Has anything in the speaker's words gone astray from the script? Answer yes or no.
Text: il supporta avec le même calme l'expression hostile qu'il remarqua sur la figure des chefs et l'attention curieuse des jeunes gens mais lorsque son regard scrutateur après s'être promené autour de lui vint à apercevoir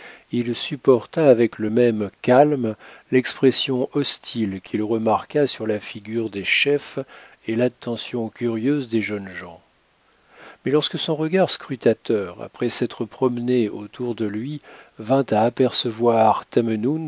no